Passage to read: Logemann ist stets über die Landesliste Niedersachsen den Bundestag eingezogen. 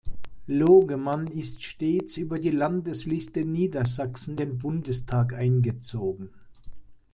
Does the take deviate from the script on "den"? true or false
false